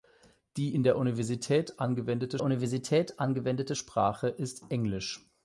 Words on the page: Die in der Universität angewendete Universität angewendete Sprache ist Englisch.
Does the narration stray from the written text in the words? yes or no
no